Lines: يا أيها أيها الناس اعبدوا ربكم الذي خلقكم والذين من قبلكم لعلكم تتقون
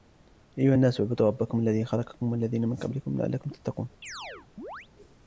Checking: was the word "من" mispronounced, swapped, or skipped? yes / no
no